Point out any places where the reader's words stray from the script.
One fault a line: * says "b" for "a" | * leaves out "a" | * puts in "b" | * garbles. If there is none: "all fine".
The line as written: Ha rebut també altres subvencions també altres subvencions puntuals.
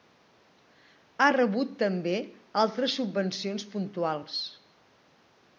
* leaves out "també altres subvencions"